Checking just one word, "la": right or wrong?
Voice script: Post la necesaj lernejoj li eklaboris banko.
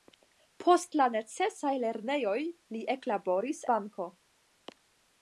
right